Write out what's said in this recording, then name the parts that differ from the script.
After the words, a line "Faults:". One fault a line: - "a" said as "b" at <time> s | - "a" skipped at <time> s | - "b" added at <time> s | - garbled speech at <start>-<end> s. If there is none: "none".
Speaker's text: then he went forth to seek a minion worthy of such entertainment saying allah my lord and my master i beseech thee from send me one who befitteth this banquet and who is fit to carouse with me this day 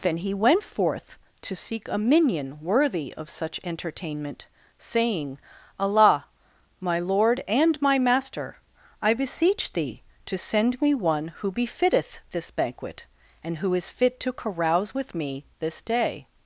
then he went forth to seek a minion worthy of such entertainment saying allah my lord and my master i beseech thee to send me one who befitteth this banquet and who is fit to carouse with me this day
Faults:
- "from" said as "to" at 10.2 s